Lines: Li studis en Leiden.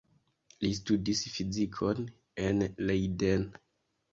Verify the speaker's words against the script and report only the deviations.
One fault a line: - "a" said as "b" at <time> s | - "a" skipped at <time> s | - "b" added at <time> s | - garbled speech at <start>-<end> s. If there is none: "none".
- "fizikon" added at 1.4 s